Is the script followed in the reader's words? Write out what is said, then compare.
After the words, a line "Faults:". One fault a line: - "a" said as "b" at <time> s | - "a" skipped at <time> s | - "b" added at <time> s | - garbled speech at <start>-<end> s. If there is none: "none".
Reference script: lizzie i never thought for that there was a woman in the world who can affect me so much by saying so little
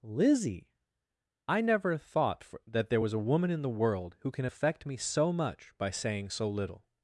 lizzie i never thought for that there was a woman in the world who can affect me so much by saying so little
Faults:
none